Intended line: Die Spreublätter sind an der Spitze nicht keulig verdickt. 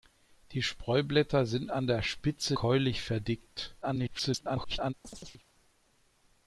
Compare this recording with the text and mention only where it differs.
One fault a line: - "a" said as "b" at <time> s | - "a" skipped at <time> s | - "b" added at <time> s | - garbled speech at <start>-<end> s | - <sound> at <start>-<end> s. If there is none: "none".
- "nicht" skipped at 2.6 s
- garbled speech at 3.8-4.9 s
- chirp at 5.0-5.5 s